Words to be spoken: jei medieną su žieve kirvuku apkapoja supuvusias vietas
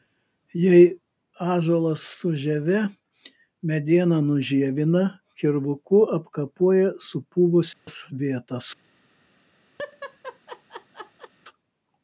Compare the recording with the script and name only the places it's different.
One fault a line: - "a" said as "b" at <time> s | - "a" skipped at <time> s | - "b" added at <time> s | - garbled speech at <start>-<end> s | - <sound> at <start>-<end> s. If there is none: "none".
- "medieną" said as "ąžuolas" at 1.5 s
- "medieną nužievina" added at 3.7 s
- dropout at 7.7-7.9 s
- laugh at 9.8-11.3 s